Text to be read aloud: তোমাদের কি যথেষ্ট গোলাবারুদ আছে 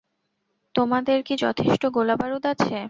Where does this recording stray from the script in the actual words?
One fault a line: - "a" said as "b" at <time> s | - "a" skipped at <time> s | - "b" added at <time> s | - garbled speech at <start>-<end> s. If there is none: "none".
none